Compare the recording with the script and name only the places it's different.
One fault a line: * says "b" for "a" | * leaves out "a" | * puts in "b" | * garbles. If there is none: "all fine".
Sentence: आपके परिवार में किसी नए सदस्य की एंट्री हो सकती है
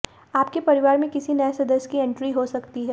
all fine